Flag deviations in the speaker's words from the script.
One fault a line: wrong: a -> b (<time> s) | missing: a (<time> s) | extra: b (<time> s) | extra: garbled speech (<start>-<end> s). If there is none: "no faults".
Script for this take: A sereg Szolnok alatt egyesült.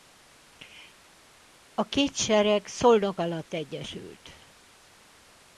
extra: két (1.8 s)